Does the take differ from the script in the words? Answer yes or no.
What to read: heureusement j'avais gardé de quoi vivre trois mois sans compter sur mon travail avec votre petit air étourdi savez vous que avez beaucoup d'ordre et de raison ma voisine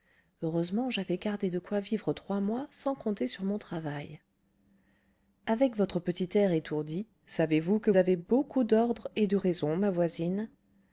no